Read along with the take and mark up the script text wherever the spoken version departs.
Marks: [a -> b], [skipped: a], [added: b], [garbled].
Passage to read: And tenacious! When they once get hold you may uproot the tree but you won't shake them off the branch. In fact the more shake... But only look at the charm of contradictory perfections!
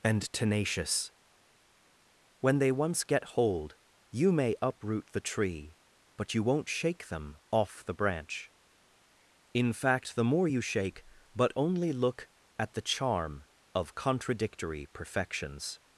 And tenacious! When they once get hold you may uproot the tree but you won't shake them off the branch. In fact the more [added: you] shake... But only look at the charm of contradictory perfections!